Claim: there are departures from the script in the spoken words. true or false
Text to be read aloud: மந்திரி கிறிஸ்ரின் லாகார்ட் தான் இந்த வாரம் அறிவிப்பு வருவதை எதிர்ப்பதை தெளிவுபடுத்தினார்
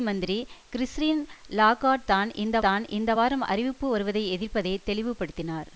true